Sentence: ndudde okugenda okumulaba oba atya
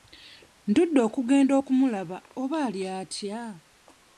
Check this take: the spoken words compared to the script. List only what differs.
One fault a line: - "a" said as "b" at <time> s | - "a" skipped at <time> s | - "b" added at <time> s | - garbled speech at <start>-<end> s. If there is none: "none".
- "ali" added at 2.7 s